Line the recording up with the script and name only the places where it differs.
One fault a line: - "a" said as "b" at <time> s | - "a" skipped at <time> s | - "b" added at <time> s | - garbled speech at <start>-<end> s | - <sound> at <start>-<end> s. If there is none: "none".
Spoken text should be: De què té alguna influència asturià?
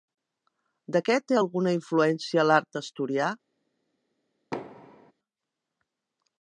- "l'art" added at 2.5 s
- thud at 4.5-5.1 s